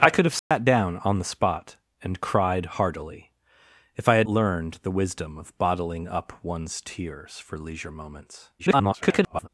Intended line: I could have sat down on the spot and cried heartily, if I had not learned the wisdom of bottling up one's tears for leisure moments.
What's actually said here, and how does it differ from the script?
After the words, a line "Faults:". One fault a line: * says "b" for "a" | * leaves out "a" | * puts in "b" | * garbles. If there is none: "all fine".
I could have sat down on the spot and cried heartily, if I had learned the wisdom of bottling up one's tears for leisure moments. [garbled]
Faults:
* leaves out "not"
* garbles